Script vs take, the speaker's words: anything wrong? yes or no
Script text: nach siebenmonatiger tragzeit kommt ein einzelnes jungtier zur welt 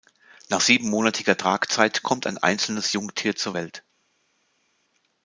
no